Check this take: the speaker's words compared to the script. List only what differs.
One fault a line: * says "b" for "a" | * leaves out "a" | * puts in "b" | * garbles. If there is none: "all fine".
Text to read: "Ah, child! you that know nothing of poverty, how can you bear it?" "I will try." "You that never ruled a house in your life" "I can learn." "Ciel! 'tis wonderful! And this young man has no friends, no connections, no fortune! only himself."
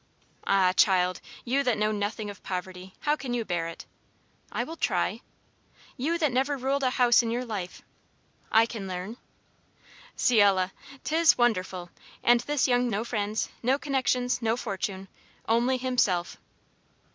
* leaves out "man has"